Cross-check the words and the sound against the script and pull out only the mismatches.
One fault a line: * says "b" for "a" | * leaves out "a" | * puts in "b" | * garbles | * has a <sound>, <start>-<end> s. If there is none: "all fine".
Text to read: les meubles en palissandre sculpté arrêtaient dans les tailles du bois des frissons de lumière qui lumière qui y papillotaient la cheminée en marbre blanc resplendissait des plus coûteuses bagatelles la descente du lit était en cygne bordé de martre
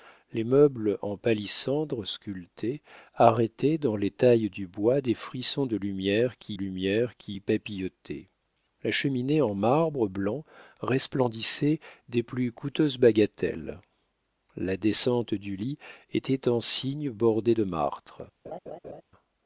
* has a laugh, 18.4-19.0 s